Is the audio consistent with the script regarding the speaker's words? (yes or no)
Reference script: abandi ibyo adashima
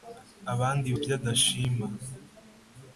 yes